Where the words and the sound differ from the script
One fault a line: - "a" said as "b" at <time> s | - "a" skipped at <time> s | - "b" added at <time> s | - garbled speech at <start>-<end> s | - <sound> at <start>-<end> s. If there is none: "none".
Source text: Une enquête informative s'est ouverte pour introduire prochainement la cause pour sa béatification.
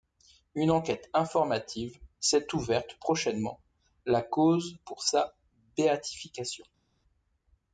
- "pour introduire" skipped at 3.0 s